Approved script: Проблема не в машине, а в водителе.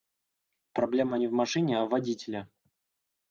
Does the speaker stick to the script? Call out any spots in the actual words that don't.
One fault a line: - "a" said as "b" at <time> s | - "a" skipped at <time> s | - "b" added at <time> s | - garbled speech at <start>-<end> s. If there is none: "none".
none